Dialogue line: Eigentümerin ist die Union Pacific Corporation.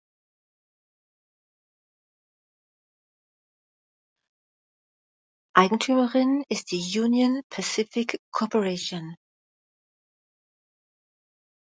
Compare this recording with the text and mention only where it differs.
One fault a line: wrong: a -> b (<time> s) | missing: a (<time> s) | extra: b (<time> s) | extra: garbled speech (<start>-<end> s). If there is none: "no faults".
no faults